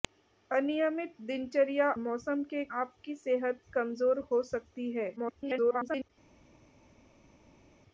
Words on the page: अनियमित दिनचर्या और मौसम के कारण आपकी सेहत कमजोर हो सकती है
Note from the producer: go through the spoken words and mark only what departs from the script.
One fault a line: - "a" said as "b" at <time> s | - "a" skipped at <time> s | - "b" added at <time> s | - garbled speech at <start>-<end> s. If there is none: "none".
- "और" skipped at 1.9 s
- "कारण" skipped at 2.6 s
- garbled speech at 5.2-6.1 s